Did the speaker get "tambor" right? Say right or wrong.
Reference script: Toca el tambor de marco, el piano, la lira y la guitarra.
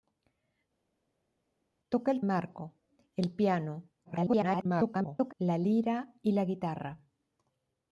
wrong